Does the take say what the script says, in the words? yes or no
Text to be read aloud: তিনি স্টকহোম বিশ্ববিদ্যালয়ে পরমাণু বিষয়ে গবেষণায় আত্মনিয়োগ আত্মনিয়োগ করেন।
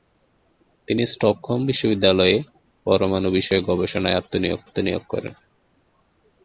yes